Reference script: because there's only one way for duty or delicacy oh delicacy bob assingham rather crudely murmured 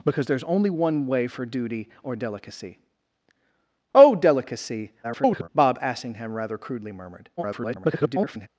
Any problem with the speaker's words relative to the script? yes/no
yes